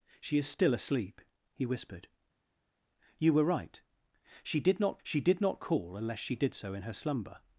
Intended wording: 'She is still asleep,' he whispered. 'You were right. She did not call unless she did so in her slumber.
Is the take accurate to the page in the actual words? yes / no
no